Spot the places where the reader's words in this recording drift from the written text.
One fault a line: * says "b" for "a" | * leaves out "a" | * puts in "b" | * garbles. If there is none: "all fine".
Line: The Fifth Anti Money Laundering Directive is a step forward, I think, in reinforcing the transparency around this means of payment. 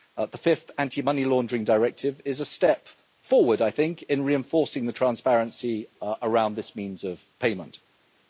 all fine